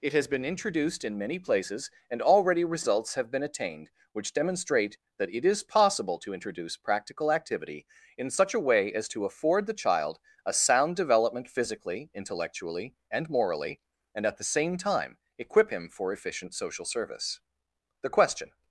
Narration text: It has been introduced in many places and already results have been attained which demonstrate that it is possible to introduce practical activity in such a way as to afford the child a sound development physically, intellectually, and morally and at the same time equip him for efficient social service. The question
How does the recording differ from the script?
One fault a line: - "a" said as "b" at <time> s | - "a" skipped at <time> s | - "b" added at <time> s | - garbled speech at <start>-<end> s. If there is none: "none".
none